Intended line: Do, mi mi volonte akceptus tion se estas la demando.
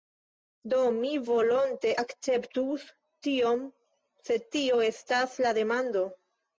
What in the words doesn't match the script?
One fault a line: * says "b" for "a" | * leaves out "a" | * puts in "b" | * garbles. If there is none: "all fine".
* leaves out "mi"
* puts in "tio"